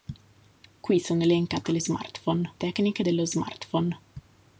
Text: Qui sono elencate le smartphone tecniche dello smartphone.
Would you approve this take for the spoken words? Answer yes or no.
yes